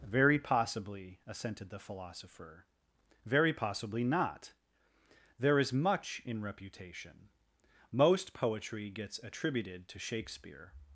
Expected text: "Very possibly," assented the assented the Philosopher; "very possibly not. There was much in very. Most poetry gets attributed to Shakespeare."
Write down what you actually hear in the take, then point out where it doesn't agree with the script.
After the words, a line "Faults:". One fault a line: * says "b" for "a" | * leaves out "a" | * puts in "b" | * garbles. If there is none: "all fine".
"Very possibly," assented the Philosopher; "very possibly not. There is much in reputation. Most poetry gets attributed to Shakespeare."
Faults:
* leaves out "assented the"
* says "is" for "was"
* says "reputation" for "very"